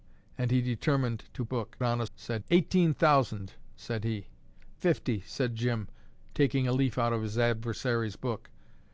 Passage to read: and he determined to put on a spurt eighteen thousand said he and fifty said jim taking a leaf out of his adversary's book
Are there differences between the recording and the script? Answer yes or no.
yes